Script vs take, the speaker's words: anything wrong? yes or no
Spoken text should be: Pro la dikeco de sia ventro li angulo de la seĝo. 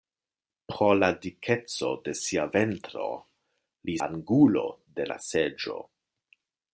no